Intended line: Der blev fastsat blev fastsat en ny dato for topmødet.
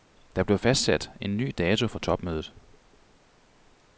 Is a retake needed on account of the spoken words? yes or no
yes